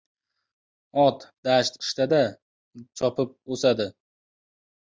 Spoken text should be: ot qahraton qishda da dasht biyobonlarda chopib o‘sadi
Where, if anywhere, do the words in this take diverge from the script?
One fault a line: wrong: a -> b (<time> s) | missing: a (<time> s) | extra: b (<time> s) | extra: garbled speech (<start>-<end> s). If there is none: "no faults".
wrong: qahraton -> dasht (1.5 s)
missing: dasht biyobonlarda (2.2 s)